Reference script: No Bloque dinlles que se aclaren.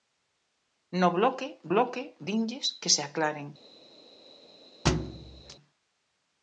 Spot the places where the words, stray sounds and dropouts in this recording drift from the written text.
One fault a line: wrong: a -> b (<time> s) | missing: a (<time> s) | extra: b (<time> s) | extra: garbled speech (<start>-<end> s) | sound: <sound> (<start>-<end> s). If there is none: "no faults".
extra: Bloque (1.7 s)
sound: thud (4.9-5.6 s)